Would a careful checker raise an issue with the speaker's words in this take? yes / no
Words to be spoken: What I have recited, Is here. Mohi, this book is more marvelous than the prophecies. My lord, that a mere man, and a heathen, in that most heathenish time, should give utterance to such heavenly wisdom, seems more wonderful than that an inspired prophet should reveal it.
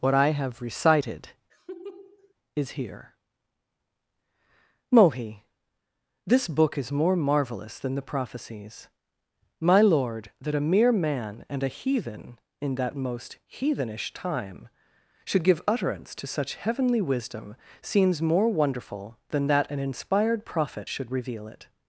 no